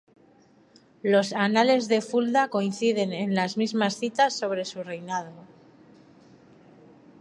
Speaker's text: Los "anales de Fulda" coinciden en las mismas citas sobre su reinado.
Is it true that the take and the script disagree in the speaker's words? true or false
false